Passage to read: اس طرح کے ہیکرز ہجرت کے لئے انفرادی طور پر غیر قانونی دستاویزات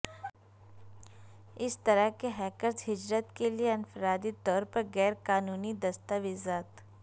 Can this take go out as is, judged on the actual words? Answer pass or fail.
pass